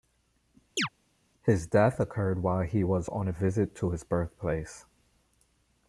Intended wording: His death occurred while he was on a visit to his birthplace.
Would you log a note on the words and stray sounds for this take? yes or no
yes